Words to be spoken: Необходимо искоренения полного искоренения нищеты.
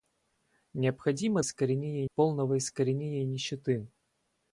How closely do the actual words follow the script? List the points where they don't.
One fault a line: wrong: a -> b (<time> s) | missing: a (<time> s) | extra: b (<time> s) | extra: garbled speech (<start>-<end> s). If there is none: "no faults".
no faults